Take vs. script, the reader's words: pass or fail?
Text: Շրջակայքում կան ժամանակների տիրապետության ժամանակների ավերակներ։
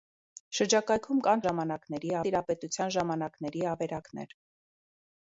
pass